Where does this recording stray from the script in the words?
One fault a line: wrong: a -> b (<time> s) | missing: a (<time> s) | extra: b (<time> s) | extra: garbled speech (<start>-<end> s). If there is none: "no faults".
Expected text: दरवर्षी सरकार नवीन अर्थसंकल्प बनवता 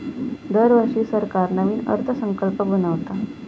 no faults